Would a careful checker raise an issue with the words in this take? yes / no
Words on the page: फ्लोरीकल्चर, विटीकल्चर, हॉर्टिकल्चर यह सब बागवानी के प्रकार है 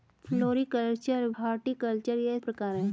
yes